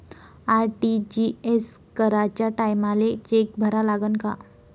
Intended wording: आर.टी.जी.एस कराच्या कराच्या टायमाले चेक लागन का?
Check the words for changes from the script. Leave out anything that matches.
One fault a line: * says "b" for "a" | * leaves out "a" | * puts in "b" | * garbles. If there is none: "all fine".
* leaves out "कराच्या"
* puts in "भरा"